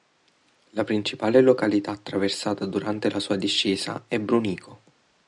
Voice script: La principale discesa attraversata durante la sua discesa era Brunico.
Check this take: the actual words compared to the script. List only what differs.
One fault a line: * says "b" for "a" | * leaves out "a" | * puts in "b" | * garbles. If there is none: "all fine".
* says "località" for "discesa"
* says "è" for "era"